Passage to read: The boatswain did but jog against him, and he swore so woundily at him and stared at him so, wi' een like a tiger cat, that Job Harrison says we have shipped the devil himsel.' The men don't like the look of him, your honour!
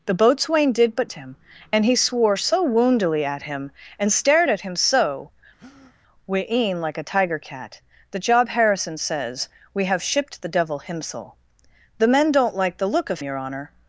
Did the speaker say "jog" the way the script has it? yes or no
no